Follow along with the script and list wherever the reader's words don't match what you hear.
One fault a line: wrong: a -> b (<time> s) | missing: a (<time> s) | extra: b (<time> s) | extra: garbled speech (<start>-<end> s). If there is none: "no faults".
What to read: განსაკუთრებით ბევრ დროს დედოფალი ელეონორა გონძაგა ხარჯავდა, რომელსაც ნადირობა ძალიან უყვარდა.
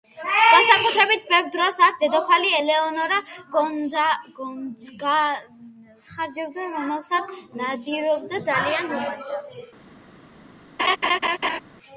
extra: აქ (1.9 s)